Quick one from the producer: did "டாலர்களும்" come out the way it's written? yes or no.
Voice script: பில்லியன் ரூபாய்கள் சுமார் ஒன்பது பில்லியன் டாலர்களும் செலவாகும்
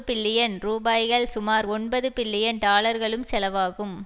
yes